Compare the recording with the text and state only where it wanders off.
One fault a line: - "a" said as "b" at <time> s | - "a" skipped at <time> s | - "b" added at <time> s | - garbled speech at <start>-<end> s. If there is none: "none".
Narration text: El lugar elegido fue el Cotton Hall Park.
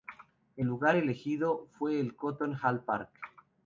none